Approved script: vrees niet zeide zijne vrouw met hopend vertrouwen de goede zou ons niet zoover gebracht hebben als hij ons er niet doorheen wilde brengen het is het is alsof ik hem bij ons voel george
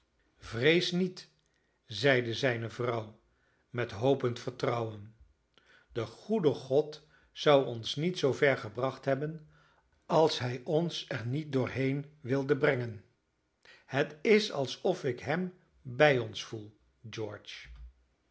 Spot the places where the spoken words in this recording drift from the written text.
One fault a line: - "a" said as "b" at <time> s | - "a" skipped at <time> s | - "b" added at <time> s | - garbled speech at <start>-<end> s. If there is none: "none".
- "god" added at 6.5 s
- "het is" skipped at 14.5 s